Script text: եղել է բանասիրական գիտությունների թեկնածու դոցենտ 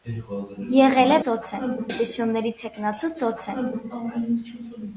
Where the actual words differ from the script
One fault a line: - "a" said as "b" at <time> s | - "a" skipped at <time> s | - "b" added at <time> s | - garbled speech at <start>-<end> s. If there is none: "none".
- "բանասիրական" said as "դոցենտ" at 1.3 s